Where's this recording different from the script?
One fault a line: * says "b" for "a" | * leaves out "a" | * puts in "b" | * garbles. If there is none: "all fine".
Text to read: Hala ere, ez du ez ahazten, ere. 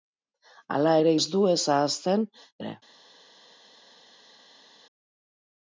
all fine